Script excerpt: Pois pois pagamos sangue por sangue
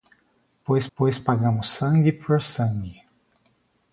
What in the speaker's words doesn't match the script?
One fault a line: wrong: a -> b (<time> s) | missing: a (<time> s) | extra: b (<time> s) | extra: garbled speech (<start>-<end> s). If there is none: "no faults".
no faults